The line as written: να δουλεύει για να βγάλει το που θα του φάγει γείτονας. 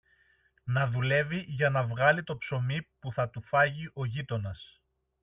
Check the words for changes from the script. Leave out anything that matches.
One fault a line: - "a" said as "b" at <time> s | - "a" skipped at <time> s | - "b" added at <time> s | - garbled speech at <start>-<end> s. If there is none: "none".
- "ψωμί" added at 2.4 s
- "ο" added at 3.9 s